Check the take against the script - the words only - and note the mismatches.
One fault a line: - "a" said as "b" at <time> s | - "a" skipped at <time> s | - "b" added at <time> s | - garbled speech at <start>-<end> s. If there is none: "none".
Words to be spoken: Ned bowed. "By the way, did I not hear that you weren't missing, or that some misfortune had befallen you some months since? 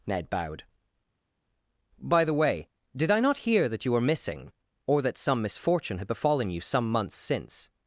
- "weren't" said as "were" at 3.9 s